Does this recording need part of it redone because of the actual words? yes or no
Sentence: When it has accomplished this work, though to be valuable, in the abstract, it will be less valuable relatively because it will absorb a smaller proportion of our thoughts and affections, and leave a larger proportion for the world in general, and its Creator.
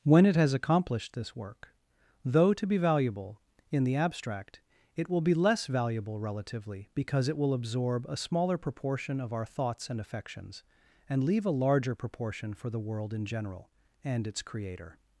no